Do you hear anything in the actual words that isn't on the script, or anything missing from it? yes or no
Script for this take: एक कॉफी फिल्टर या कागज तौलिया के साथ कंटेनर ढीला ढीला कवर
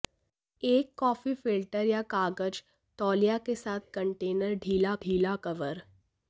no